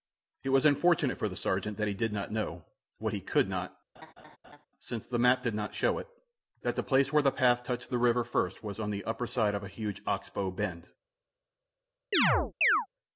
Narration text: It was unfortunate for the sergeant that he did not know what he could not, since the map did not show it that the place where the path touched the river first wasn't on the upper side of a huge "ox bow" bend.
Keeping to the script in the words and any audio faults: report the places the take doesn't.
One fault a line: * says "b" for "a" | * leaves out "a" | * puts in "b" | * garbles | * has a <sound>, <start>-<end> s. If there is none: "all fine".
* has a laugh, 3.9-4.7 s
* says "was" for "wasn't"
* has a chirp, 12.1-12.9 s